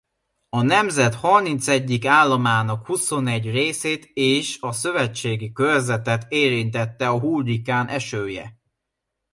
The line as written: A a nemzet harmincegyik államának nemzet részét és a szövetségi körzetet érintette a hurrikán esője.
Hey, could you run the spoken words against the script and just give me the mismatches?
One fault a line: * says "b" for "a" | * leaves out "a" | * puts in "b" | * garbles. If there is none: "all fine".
* leaves out "a"
* says "huszonegy" for "nemzet"